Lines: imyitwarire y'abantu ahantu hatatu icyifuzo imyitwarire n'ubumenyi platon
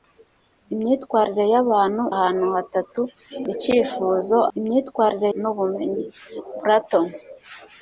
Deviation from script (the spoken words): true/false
false